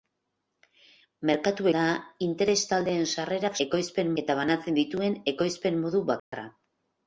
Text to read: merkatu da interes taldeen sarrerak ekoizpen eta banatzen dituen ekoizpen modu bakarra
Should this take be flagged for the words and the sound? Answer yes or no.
yes